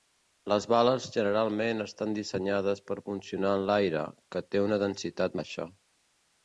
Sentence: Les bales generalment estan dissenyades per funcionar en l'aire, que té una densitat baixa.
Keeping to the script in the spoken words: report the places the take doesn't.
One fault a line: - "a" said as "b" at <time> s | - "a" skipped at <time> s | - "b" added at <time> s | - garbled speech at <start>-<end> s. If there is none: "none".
none